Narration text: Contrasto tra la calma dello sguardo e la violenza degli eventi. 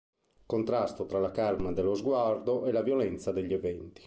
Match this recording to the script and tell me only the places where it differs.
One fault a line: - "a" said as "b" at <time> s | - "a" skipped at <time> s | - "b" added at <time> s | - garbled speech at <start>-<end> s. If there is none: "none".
none